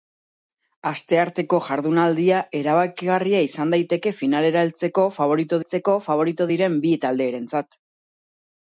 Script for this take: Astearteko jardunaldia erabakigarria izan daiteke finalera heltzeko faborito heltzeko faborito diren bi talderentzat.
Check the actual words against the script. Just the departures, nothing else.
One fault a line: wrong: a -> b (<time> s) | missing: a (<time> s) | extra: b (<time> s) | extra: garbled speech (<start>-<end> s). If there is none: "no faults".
no faults